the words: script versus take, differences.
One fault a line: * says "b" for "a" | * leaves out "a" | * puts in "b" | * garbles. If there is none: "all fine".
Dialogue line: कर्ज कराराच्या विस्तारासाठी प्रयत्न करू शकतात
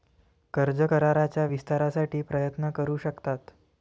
all fine